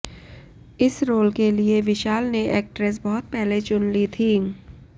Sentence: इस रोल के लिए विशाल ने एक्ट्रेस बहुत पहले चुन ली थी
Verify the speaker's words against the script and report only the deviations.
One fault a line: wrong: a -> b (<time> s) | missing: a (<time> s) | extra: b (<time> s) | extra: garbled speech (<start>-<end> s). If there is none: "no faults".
no faults